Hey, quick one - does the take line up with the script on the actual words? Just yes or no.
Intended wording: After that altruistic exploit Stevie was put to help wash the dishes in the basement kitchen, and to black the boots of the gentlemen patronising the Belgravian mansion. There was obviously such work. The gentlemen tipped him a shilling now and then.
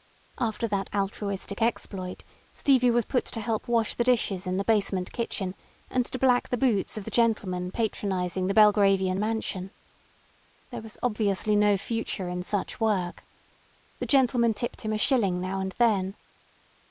no